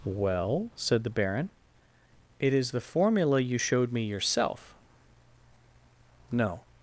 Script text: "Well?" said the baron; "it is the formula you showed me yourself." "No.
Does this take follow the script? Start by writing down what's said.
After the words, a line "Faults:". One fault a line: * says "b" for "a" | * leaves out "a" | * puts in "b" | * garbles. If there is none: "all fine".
"Well?" said the baron; "it is the formula you showed me yourself." "No.
Faults:
all fine